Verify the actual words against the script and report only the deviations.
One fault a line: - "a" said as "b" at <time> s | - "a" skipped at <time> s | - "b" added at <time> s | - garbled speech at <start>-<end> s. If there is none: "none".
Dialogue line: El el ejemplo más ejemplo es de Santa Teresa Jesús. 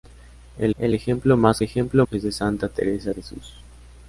none